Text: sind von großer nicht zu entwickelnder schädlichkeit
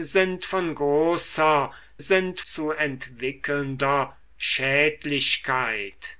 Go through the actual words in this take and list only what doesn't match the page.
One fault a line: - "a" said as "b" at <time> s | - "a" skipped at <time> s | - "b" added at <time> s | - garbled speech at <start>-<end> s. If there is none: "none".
- "nicht" said as "sind" at 2.0 s